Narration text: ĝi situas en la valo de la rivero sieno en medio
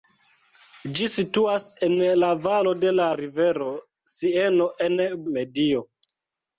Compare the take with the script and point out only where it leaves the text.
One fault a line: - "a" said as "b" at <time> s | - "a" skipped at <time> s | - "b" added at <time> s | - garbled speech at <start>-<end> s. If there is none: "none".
none